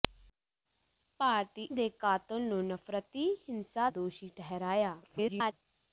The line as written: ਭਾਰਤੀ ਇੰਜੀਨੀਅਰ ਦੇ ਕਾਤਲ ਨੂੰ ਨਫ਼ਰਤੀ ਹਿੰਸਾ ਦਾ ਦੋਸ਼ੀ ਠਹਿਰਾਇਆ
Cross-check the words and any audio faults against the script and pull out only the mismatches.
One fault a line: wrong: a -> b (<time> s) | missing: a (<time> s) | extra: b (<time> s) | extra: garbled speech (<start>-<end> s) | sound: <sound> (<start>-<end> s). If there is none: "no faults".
missing: ਇੰਜੀਨੀਅਰ (1.6 s)
missing: ਦਾ (3.9 s)
extra: garbled speech (5.0-5.5 s)